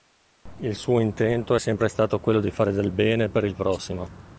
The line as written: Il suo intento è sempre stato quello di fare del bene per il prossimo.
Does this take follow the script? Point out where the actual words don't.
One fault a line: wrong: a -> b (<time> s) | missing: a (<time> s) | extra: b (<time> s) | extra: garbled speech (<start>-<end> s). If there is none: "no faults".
no faults